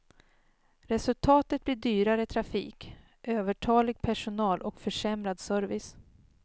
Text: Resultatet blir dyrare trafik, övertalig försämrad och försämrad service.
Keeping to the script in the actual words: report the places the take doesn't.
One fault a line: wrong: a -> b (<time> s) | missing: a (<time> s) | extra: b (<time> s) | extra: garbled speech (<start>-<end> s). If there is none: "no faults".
wrong: försämrad -> personal (4.0 s)